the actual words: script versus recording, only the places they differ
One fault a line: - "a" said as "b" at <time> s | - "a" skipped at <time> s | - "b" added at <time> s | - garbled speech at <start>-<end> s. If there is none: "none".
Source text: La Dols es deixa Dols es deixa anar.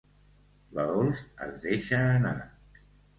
- "Dols es deixa" skipped at 2.0 s